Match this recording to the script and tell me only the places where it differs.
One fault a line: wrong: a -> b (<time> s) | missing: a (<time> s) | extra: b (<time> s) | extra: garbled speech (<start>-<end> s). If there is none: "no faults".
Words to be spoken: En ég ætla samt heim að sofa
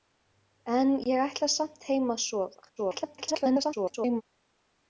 extra: garbled speech (2.8-4.2 s)